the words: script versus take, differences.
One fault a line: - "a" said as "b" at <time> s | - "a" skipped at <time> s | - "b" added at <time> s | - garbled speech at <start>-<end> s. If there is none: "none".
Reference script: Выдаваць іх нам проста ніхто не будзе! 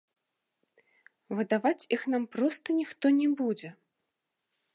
none